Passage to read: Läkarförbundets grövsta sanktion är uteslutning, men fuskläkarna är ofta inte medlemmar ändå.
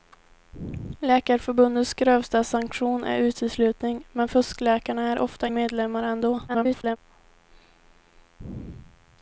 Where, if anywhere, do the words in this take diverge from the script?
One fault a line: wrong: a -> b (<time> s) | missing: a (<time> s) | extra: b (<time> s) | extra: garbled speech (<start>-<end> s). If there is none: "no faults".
missing: inte (5.5 s)
extra: garbled speech (6.5-7.0 s)